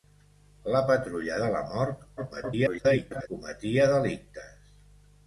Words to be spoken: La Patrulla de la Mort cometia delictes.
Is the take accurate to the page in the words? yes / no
no